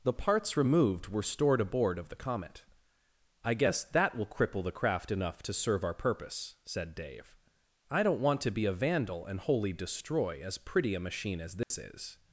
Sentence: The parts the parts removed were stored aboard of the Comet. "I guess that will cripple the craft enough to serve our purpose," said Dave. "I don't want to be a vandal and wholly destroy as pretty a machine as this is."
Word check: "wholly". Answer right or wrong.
right